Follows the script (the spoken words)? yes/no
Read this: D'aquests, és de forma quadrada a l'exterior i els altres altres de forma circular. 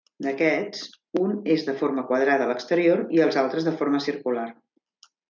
no